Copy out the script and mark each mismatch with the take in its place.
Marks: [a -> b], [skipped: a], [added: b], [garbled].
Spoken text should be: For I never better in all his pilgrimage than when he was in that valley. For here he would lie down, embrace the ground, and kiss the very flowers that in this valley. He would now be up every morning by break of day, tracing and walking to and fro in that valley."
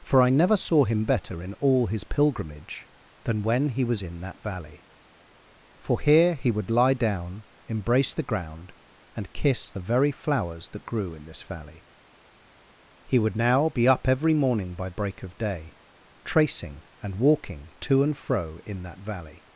For I never [added: saw him] better in all his pilgrimage than when he was in that valley. For here he would lie down, embrace the ground, and kiss the very flowers that [added: grew] in this valley. He would now be up every morning by break of day, tracing and walking to and fro in that valley."